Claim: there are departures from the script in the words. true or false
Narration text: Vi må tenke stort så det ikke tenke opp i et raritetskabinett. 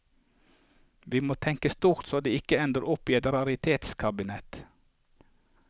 true